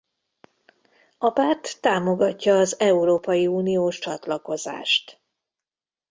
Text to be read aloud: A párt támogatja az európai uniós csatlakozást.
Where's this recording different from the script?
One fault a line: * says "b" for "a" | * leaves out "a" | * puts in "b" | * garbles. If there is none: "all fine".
all fine